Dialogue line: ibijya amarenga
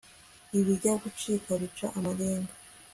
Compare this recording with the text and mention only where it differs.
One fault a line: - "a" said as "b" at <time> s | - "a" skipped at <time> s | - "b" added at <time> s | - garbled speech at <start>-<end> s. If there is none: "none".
- "gucika bica" added at 1.0 s